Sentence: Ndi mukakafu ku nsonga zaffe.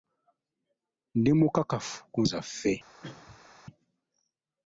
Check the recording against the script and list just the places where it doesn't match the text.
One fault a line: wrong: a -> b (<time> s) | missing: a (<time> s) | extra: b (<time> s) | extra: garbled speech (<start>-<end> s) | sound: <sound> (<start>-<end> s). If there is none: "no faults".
missing: nsonga (2.2 s)
sound: cough (3.0-3.5 s)